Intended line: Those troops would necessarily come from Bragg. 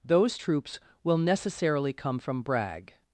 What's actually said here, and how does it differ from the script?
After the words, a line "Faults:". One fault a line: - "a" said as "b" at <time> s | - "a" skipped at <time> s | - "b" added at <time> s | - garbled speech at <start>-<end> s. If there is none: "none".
Those troops will necessarily come from Bragg.
Faults:
- "would" said as "will" at 1.0 s